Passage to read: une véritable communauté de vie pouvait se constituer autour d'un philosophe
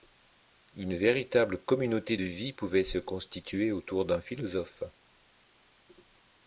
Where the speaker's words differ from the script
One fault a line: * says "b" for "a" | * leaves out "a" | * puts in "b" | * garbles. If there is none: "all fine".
all fine